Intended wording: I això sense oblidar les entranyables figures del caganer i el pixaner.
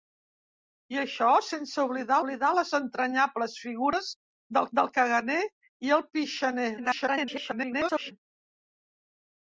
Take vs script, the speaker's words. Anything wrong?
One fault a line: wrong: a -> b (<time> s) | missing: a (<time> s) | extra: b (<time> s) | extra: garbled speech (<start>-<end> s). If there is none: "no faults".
extra: oblidar (2.2 s)
extra: del (4.8 s)
extra: garbled speech (6.8-8.1 s)